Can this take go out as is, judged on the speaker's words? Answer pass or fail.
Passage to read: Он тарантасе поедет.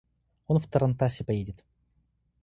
fail